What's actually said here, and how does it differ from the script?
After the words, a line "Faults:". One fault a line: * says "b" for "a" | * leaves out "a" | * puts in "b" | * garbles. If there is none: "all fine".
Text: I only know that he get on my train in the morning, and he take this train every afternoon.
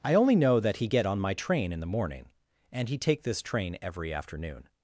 I only know that he get on my train in the morning, and he take this train every afternoon.
Faults:
all fine